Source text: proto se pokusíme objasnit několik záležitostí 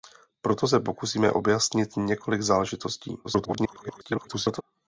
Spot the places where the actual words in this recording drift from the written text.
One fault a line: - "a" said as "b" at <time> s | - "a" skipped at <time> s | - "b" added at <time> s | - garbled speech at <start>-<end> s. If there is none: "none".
- garbled speech at 3.2-4.6 s